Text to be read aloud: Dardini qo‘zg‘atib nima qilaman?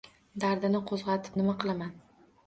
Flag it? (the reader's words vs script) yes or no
no